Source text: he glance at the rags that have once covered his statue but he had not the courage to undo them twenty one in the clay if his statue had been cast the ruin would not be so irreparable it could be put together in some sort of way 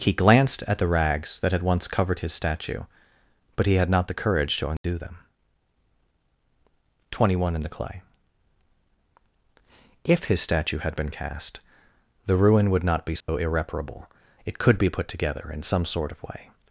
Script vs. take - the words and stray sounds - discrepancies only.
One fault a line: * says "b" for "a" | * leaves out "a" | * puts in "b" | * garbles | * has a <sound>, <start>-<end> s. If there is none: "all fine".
* says "glanced" for "glance"
* says "had" for "have"
* has a dropout, 4.8-4.8 s
* has a dropout, 13.2-13.3 s